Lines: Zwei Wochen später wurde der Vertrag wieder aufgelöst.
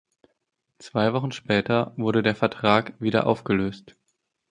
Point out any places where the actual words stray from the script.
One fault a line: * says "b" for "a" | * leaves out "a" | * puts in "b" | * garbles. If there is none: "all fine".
all fine